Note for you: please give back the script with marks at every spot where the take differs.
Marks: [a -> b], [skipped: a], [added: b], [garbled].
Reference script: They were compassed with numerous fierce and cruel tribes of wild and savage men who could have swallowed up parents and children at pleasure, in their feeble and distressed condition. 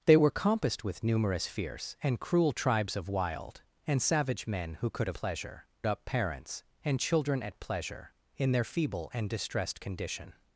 They were compassed with numerous fierce and cruel tribes of wild and savage men who could have [swallowed -> pleasure] up parents and children at pleasure, in their feeble and distressed condition.